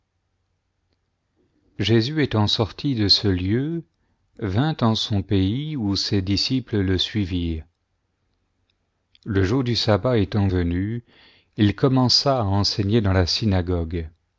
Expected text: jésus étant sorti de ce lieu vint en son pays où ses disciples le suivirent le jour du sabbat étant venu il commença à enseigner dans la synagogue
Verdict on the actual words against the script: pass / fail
pass